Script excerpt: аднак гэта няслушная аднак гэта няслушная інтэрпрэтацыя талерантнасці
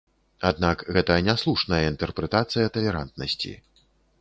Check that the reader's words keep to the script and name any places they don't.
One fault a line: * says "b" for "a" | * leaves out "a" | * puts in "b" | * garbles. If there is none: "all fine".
* leaves out "аднак гэта няслушная"